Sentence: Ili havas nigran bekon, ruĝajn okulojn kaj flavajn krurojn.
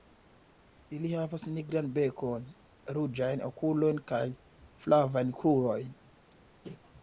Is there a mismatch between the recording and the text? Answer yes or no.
no